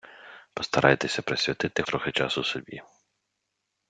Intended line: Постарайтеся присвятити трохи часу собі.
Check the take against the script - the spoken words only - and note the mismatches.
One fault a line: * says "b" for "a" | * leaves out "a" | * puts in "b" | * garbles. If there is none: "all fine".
all fine